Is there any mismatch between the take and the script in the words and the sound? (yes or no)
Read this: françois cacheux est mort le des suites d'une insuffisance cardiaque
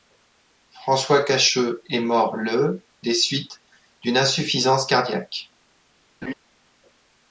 yes